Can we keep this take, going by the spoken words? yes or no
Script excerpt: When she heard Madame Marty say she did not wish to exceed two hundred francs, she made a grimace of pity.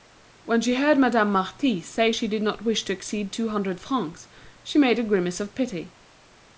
yes